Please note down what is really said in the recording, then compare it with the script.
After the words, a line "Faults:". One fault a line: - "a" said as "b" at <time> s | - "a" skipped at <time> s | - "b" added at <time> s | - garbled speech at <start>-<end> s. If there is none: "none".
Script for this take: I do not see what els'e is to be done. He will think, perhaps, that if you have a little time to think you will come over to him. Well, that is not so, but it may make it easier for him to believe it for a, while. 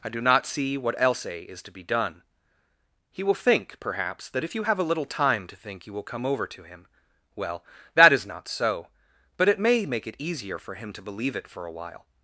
I do not see what els'e is to be done. He will think, perhaps, that if you have a little time to think you will come over to him. Well, that is not so, but it may make it easier for him to believe it for a, while.
Faults:
none